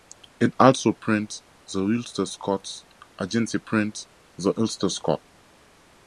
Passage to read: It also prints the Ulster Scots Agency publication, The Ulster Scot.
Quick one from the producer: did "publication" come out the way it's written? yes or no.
no